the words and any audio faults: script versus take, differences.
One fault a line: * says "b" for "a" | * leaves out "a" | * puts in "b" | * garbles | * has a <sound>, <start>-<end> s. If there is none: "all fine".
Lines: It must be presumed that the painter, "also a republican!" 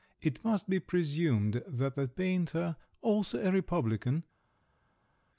all fine